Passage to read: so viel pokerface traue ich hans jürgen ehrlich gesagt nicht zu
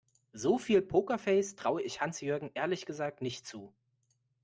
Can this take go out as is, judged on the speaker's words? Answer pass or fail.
pass